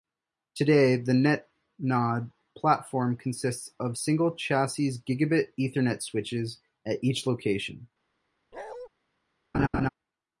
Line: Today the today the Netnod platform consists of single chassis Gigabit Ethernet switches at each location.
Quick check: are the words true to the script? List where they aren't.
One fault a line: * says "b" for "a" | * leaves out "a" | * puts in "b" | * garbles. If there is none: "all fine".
* leaves out "today the"